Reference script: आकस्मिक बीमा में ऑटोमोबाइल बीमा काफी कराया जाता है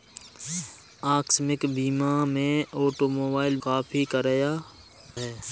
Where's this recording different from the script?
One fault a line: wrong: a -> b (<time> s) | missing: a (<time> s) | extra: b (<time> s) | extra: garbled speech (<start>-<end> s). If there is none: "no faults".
missing: बीमा (3.6 s)
missing: जाता (4.5 s)